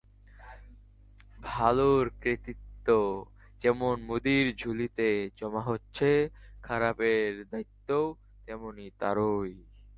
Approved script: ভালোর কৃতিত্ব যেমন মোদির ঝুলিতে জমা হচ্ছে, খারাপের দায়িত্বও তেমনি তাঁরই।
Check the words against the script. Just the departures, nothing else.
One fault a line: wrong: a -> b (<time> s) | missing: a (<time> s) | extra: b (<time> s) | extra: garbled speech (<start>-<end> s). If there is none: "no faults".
no faults